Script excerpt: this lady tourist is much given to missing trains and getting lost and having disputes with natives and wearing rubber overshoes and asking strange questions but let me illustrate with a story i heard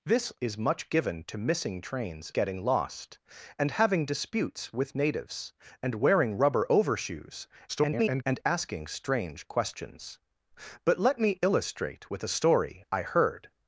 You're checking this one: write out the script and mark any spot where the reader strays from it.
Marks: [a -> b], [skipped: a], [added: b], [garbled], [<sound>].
this [skipped: lady tourist] is much given to missing trains [skipped: and] getting lost and having disputes with natives and wearing rubber overshoes [garbled] and asking strange questions but let me illustrate with a story i heard